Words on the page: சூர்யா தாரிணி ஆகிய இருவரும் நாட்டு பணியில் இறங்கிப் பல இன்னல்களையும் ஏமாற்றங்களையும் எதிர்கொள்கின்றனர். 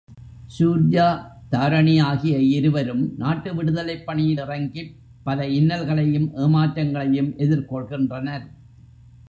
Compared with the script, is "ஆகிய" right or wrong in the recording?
right